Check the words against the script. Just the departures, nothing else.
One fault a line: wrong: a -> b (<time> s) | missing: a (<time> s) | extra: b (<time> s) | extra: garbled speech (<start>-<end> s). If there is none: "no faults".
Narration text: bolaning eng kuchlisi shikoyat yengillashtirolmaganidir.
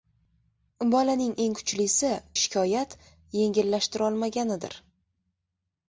no faults